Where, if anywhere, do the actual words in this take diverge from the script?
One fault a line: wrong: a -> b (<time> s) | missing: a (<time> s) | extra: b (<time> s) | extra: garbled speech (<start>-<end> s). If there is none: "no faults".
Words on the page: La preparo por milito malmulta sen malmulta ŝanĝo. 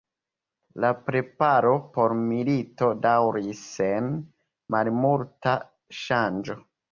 wrong: malmulta -> daŭris (3.0 s)